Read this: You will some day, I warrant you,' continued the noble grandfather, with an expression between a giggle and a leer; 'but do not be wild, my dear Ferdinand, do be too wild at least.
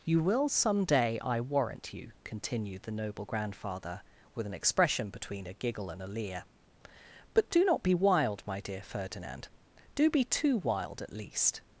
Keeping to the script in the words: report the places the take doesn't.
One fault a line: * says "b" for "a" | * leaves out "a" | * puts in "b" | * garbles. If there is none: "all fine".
all fine